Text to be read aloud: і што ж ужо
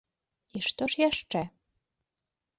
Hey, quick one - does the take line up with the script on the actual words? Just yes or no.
no